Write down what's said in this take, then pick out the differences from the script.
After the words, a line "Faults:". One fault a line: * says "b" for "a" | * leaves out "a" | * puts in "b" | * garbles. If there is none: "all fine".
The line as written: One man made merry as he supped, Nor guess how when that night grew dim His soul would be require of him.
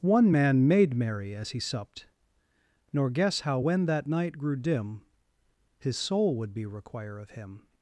One man made merry as he supped, Nor guess how when that night grew dim His soul would be require of him.
Faults:
all fine